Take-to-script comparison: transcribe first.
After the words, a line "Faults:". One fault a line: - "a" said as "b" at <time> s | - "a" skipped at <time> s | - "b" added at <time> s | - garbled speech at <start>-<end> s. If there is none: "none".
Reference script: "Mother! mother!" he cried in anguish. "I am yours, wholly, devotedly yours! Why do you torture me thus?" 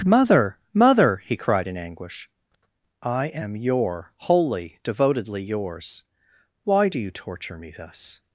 "Mother! mother!" he cried in anguish. "I am your, wholly, devotedly yours! Why do you torture me thus?"
Faults:
- "yours" said as "your" at 3.6 s